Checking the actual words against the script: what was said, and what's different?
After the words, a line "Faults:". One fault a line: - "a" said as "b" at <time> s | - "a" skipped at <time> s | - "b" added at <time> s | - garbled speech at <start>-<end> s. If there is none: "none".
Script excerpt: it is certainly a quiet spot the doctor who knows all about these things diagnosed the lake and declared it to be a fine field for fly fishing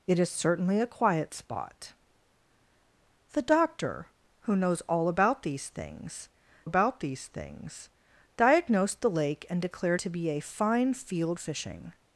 it is certainly a quiet spot the doctor who knows all about these things about these things diagnosed the lake and declared to be a fine field fishing
Faults:
- "about these things" added at 6.6 s
- "it" skipped at 10.0 s
- "for fly" skipped at 11.4 s